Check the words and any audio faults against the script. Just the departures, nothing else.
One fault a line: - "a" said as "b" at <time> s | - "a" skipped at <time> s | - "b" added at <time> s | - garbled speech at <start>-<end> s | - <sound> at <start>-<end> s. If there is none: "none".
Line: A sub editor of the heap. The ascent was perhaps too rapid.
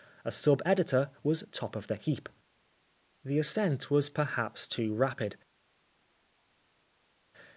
- "was top" added at 1.2 s